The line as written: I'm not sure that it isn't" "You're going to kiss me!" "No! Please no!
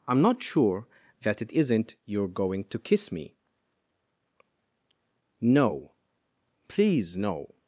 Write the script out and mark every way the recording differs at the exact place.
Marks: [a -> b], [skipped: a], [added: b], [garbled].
I'm not sure that it isn't" "You're going to kiss me!" "No! Please no!